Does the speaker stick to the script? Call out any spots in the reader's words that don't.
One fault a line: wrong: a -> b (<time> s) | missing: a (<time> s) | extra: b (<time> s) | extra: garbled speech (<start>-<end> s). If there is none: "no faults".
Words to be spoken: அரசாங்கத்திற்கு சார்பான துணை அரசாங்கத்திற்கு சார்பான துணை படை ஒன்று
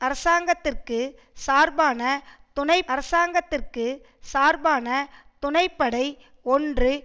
no faults